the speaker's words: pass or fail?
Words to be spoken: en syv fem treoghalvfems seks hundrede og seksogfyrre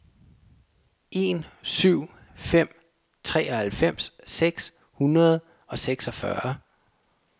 pass